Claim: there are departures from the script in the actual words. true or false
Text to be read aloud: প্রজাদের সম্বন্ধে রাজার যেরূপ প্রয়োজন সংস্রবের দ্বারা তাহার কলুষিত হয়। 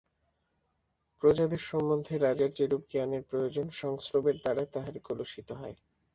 true